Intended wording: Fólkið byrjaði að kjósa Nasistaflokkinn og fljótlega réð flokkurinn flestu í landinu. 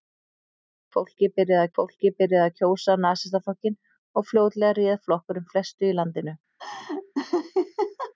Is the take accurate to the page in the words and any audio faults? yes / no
no